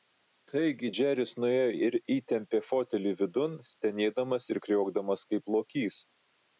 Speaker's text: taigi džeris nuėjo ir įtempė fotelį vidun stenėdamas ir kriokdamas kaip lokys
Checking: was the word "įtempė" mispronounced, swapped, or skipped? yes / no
no